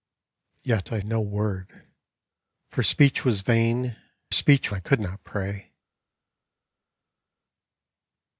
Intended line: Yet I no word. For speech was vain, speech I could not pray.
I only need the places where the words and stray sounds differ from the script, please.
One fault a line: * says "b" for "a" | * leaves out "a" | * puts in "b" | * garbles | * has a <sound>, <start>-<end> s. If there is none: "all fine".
all fine